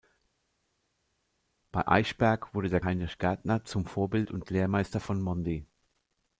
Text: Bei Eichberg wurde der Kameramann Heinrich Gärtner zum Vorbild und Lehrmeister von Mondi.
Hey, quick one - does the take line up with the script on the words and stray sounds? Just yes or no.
no